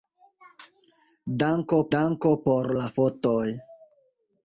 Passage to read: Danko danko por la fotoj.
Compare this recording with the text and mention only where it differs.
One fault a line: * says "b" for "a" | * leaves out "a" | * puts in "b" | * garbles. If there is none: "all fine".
all fine